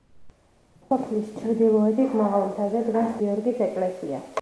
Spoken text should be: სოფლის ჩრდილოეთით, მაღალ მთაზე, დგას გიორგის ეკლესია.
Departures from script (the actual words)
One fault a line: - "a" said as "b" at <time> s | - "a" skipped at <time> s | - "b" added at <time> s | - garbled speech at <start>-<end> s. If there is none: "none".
none